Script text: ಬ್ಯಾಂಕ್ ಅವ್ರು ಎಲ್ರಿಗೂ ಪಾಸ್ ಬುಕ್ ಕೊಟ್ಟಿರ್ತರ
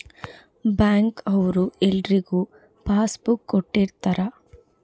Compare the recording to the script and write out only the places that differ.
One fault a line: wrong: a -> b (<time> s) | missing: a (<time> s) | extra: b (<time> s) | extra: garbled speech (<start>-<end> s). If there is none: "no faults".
no faults